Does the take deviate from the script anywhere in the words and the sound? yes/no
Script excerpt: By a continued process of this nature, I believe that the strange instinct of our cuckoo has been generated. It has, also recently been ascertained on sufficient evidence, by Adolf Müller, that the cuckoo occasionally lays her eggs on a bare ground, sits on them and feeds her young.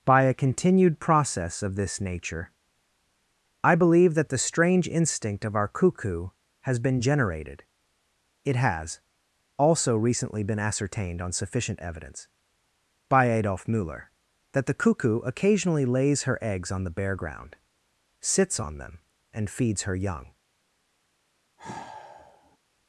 yes